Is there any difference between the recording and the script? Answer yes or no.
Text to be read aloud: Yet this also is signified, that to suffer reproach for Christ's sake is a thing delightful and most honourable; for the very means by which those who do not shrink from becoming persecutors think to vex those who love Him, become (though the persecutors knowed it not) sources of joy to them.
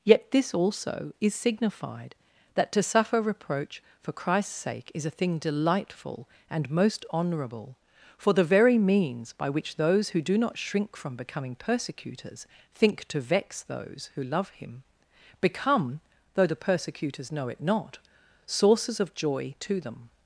yes